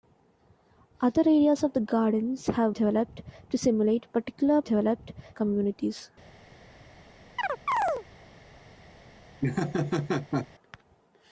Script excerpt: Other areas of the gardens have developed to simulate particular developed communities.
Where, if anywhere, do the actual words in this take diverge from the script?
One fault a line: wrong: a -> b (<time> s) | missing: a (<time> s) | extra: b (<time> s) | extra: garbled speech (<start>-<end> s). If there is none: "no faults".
no faults